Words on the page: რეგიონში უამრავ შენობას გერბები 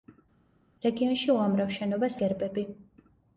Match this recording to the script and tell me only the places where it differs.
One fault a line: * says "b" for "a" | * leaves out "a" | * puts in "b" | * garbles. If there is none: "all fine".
all fine